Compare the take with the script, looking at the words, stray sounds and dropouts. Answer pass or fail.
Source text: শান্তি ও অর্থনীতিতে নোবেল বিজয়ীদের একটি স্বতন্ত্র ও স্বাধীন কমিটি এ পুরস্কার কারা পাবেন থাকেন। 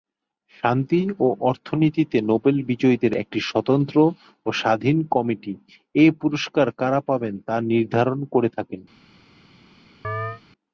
fail